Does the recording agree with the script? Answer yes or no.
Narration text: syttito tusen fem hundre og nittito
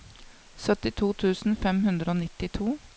yes